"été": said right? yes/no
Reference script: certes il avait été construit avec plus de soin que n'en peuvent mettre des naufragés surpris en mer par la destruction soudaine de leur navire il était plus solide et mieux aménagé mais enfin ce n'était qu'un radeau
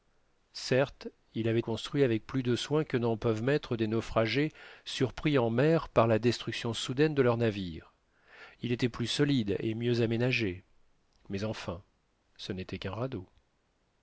no